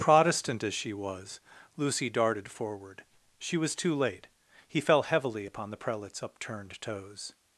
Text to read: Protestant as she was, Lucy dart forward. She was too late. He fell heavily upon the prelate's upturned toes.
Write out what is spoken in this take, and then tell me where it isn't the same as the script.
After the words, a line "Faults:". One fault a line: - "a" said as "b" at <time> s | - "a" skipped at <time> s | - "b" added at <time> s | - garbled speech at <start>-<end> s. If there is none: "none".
Protestant as she was, Lucy darted forward. She was too late. He fell heavily upon the prelate's upturned toes.
Faults:
- "dart" said as "darted" at 2.1 s